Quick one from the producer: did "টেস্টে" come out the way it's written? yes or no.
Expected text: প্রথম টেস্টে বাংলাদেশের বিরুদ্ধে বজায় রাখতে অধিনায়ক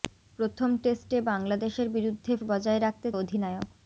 yes